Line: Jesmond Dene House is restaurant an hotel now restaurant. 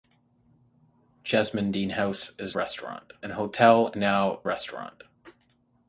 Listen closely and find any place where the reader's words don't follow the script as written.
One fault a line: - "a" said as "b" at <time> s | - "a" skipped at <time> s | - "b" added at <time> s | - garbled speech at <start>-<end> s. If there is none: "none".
none